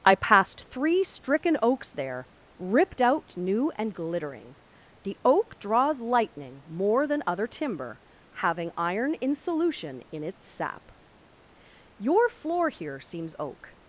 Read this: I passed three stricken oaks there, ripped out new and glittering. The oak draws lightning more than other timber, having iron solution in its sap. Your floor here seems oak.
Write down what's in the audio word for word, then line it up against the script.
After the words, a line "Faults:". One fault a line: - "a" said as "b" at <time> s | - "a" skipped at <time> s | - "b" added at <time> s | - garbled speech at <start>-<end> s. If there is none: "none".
I passed three stricken oaks there, ripped out new and glittering. The oak draws lightning more than other timber, having iron in solution in its sap. Your floor here seems oak.
Faults:
- "in" added at 9.2 s